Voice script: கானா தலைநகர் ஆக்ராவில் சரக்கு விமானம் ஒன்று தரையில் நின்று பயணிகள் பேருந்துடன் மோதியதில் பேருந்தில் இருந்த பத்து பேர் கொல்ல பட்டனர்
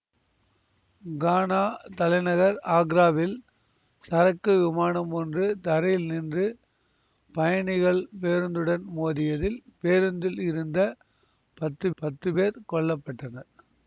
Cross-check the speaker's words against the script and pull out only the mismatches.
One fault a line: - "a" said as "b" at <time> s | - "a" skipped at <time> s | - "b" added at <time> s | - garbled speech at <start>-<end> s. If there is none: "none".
- "பத்து" added at 12.0 s